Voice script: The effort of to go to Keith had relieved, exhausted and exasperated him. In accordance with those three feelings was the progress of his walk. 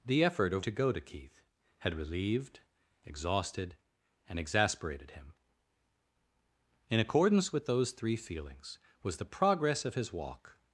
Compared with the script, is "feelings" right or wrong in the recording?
right